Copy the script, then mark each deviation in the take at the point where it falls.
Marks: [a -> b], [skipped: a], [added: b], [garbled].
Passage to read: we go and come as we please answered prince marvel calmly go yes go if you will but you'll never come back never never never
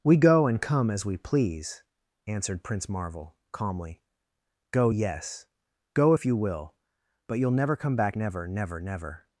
we go and come as we please answered prince marvel calmly go yes go if you will but you'll never come back never never never